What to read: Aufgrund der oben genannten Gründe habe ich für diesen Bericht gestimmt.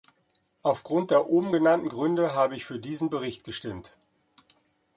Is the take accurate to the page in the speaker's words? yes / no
yes